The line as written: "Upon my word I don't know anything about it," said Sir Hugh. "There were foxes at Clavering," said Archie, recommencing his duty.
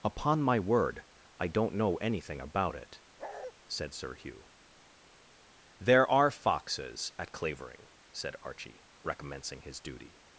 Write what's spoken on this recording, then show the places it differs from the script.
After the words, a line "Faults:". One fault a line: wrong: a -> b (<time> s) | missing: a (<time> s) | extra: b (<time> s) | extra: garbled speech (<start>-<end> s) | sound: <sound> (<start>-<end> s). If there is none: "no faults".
"Upon my word I don't know anything about it," said Sir Hugh. "There are foxes at Clavering," said Archie, recommencing his duty.
Faults:
sound: bark (3.2-3.5 s)
wrong: were -> are (6.1 s)